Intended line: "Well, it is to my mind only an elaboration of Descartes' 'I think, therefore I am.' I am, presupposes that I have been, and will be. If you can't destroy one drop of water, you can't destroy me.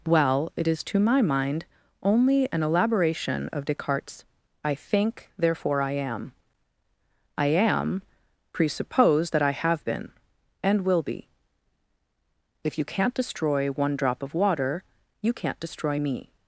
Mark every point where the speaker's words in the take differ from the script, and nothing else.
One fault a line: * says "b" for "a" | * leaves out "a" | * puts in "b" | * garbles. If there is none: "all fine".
* says "presuppose" for "presupposes"